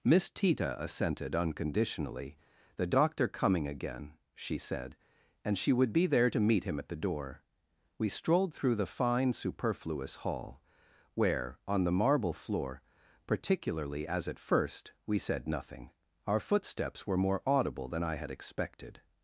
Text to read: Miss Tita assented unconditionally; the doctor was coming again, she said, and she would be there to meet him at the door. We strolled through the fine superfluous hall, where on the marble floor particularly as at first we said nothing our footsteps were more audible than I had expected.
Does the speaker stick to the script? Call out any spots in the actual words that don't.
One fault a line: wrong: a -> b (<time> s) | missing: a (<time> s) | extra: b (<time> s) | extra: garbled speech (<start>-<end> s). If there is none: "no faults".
missing: was (3.3 s)